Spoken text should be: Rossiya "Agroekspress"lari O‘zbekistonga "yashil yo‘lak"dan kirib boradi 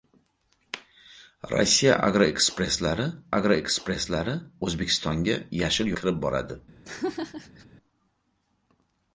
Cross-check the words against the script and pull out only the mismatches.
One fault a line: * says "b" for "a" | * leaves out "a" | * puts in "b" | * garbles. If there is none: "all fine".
* puts in "agroekspress"lari"
* leaves out "yo‘lak"dan"